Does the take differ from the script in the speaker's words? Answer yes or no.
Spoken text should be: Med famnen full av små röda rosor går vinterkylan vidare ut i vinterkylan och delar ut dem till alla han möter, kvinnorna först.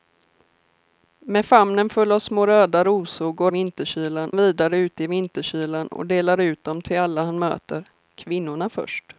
no